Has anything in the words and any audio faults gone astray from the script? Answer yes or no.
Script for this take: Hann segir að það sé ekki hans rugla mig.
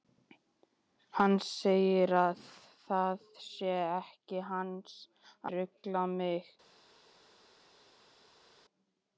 no